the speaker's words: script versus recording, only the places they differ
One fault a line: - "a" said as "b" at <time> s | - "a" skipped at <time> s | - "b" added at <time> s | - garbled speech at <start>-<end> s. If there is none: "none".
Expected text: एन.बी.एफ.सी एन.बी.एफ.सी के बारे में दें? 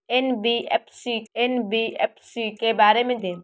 none